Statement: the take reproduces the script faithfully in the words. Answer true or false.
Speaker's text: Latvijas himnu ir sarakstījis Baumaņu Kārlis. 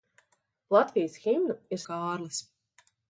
false